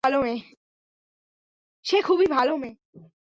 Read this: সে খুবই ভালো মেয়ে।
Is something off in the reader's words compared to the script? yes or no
no